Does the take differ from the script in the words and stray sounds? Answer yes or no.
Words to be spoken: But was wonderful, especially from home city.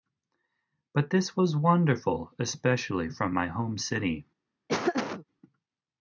yes